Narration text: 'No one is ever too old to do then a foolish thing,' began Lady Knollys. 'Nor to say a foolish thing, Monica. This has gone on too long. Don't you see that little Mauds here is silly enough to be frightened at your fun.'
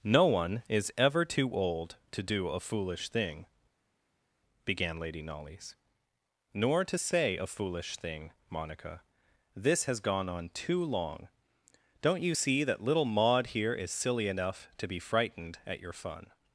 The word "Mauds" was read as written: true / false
false